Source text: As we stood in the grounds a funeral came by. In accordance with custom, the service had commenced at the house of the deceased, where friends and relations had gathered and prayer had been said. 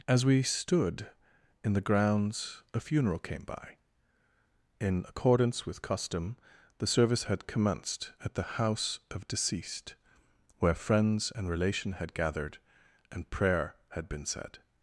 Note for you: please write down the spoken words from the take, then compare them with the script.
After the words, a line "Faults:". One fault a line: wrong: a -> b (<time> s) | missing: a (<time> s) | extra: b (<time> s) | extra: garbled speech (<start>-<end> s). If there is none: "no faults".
As we stood in the grounds a funeral came by. In accordance with custom, the service had commenced at the house of deceased, where friends and relation had gathered and prayer had been said.
Faults:
missing: the (9.3 s)
wrong: relations -> relation (11.5 s)